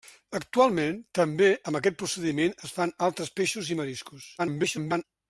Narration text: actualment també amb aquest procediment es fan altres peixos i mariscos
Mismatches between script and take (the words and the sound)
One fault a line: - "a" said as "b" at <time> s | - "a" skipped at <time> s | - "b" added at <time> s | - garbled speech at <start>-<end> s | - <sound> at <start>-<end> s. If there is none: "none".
- garbled speech at 4.4-5.0 s